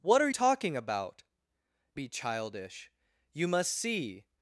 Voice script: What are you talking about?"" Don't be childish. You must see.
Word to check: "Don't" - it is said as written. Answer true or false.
false